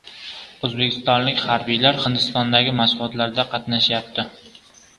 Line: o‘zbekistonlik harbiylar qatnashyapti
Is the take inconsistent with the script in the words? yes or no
yes